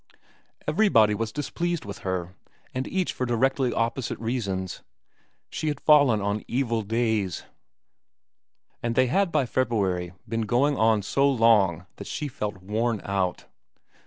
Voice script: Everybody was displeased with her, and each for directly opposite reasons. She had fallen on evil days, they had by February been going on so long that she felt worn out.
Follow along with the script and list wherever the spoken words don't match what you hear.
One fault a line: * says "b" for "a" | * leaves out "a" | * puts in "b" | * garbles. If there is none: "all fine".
* puts in "and"